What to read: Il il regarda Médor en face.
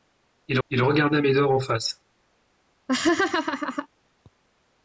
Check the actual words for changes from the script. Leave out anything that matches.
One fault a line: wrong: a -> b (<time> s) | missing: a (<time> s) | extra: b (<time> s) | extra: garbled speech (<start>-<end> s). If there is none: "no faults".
no faults